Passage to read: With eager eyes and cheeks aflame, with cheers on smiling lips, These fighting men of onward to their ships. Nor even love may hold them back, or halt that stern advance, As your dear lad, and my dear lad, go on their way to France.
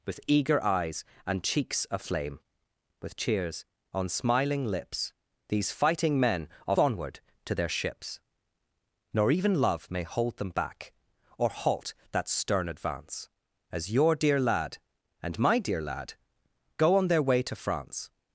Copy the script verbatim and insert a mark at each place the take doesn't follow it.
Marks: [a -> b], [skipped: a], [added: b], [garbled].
With eager eyes and cheeks aflame, with cheers on smiling lips, These fighting men of onward to their ships. Nor even love may hold them back, or halt that stern advance, As your dear lad, and my dear lad, go on their way to France.